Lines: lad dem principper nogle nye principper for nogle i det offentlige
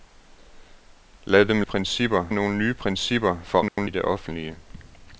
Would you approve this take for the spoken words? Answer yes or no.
yes